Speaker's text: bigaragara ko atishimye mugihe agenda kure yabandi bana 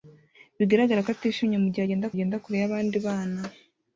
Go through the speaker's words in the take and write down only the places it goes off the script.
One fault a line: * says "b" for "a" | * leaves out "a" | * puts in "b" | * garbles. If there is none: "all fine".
* puts in "agenda"